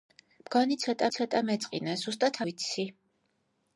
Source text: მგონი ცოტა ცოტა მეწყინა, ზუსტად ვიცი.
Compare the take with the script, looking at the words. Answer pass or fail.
pass